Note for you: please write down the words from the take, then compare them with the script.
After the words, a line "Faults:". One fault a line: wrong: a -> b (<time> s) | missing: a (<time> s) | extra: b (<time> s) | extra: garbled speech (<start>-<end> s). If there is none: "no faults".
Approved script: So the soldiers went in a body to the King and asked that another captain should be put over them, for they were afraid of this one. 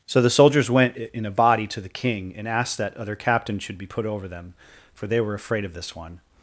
So the soldiers went in a body to the King and asked that other captain should be put over them, for they were afraid of this one.
Faults:
wrong: another -> other (3.0 s)